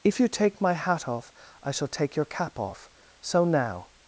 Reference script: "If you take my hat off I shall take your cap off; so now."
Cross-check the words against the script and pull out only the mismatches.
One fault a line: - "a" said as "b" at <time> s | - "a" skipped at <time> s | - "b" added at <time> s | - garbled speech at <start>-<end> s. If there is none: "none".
none